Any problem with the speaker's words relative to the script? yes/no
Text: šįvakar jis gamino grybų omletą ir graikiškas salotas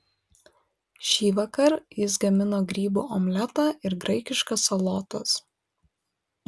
no